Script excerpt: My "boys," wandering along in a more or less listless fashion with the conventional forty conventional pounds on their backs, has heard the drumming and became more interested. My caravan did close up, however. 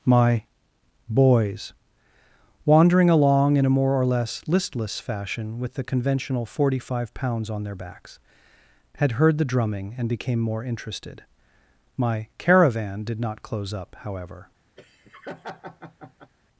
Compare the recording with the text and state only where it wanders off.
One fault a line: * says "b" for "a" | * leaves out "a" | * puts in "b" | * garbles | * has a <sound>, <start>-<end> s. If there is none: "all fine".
* says "five" for "conventional"
* says "had" for "has"
* puts in "not"
* has a laugh, 14.8-16.3 s